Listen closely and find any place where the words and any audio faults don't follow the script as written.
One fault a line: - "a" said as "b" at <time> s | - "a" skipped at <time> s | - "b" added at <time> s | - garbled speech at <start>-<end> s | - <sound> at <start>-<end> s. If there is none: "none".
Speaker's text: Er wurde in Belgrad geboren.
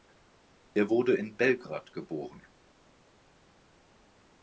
none